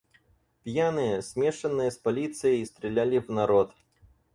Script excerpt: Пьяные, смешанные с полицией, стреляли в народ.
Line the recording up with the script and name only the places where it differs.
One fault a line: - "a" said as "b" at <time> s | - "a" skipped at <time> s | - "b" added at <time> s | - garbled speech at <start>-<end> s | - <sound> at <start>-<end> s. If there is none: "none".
none